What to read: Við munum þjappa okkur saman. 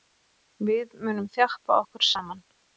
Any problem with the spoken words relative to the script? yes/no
no